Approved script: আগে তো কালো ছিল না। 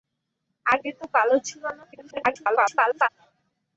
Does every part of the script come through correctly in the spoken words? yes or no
no